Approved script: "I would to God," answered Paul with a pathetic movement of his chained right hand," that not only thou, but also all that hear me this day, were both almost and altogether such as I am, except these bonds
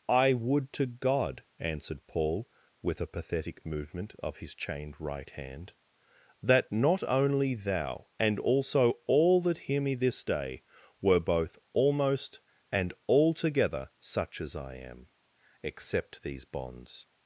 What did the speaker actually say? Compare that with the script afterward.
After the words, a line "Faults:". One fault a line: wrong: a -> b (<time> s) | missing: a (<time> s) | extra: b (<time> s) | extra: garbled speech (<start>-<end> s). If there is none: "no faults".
"I would to God," answered Paul with a pathetic movement of his chained right hand," that not only thou, and also all that hear me this day, were both almost and altogether such as I am, except these bonds
Faults:
wrong: but -> and (8.2 s)